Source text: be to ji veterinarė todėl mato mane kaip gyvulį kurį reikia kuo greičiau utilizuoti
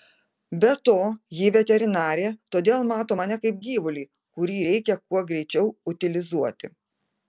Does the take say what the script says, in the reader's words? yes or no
yes